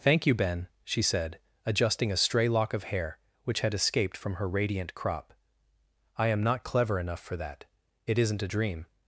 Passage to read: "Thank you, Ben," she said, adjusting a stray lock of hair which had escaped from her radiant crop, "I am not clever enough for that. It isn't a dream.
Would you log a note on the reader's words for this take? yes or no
no